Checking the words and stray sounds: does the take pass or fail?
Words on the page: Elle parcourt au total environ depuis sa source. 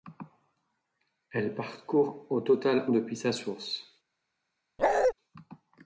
fail